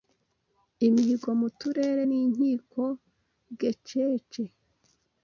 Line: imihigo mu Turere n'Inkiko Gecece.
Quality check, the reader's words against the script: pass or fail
pass